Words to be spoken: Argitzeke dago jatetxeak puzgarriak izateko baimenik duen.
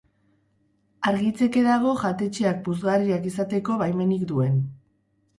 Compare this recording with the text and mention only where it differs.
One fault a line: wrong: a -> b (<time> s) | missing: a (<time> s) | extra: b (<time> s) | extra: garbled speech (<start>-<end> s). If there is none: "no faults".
no faults